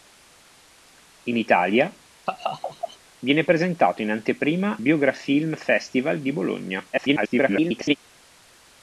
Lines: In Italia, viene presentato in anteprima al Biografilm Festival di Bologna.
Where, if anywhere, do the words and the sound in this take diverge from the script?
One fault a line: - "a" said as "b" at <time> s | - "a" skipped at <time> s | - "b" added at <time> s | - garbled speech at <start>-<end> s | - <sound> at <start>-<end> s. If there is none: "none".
- laugh at 2.2-3.0 s
- "al" skipped at 4.8 s
- garbled speech at 6.9-8.0 s